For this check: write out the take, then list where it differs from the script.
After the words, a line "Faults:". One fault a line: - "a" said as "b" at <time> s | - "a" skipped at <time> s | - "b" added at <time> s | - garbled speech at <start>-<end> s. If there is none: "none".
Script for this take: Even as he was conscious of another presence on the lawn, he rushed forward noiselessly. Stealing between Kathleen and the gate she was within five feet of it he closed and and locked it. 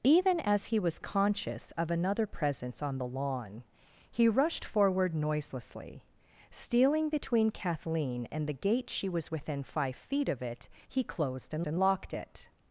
Even as he was conscious of another presence on the lawn, he rushed forward noiselessly. Stealing between Kathleen and the gate she was within five feet of it he closed and and locked it.
Faults:
none